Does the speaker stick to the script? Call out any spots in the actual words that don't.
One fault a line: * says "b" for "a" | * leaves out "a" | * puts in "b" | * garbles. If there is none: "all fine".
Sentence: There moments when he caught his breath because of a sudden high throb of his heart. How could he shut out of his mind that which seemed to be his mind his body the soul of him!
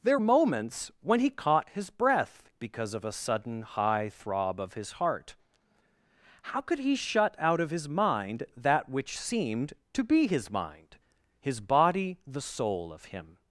all fine